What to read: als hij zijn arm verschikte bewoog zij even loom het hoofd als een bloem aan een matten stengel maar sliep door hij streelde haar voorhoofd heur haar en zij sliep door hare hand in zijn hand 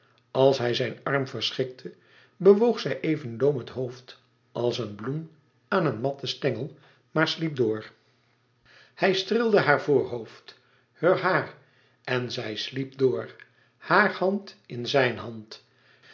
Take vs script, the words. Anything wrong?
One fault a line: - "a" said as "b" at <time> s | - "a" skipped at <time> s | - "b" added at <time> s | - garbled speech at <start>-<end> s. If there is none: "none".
none